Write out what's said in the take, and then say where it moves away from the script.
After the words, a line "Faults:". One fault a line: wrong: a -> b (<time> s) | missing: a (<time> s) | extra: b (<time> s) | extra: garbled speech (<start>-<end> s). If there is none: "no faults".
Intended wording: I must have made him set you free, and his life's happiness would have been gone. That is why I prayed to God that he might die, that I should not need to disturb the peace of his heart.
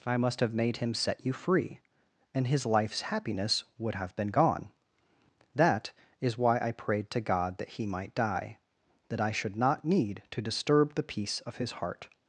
I must have made him set you free, and his life's happiness would have been gone. That is why I prayed to God that he might die, that I should not need to disturb the peace of his heart.
Faults:
no faults